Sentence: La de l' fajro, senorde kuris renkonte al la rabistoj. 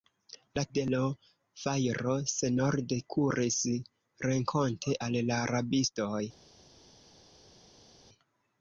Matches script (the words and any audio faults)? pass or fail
pass